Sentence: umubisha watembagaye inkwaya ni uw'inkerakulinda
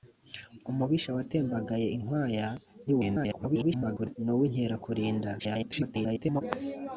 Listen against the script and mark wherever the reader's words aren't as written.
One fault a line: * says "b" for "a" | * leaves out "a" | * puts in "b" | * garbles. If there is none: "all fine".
* garbles
* garbles